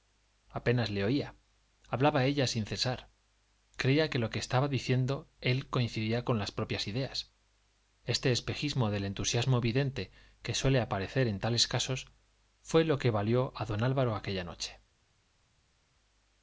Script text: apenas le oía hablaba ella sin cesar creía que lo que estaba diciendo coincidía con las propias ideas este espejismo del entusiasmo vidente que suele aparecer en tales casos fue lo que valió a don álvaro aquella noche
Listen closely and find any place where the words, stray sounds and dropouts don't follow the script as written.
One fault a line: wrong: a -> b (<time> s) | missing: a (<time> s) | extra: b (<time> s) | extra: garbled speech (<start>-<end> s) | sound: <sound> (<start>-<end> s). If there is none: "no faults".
extra: él (5.4 s)